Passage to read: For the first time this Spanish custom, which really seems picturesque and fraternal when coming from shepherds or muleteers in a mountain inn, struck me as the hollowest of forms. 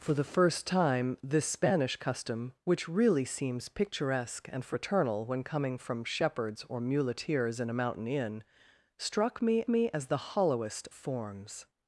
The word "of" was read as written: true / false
false